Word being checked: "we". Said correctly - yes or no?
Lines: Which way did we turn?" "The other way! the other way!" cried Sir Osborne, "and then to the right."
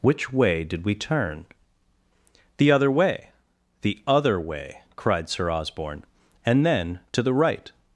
yes